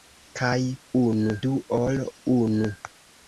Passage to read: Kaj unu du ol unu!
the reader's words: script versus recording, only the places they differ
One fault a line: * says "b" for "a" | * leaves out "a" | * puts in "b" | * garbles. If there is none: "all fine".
all fine